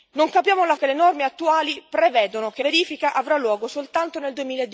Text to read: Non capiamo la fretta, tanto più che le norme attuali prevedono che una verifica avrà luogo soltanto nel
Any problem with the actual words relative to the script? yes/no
yes